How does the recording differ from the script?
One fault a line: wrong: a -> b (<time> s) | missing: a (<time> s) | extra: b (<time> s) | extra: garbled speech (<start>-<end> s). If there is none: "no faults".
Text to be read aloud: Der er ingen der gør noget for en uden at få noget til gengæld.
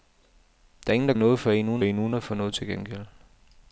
missing: gør (1.1 s)
extra: en uden (1.8 s)